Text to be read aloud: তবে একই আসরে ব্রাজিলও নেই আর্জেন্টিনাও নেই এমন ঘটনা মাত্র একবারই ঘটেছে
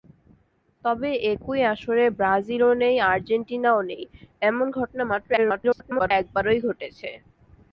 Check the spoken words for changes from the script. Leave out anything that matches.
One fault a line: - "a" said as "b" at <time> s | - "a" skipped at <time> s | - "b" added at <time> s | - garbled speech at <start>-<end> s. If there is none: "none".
- garbled speech at 5.4-6.1 s